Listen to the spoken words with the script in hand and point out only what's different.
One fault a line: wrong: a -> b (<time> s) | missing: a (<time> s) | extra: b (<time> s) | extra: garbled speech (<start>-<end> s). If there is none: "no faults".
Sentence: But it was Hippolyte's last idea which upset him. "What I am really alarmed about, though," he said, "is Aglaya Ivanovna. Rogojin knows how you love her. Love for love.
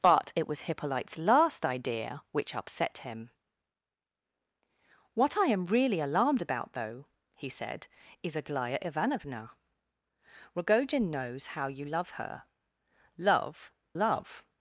missing: for (13.7 s)